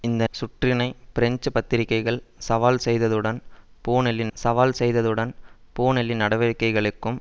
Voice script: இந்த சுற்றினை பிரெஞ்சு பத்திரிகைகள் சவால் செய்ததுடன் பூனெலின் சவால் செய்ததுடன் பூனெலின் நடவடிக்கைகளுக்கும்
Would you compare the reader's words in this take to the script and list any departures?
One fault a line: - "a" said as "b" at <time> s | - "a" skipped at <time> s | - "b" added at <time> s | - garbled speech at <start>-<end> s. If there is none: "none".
none